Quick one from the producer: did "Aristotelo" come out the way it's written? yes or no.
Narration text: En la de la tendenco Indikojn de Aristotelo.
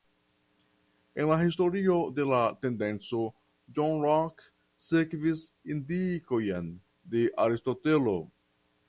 yes